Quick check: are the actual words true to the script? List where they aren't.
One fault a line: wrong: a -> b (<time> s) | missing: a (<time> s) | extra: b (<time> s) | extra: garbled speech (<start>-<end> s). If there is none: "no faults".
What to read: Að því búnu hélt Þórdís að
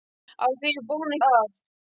missing: hélt Þórdís (1.2 s)